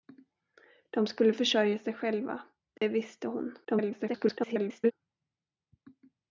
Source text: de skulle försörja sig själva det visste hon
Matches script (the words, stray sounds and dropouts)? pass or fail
fail